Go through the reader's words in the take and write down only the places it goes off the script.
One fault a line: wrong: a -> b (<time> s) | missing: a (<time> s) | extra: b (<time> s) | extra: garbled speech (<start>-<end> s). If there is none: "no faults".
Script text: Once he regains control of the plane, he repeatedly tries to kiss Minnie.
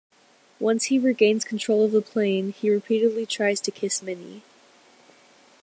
no faults